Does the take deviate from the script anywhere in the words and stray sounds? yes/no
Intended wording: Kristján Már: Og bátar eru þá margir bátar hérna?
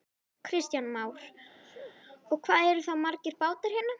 yes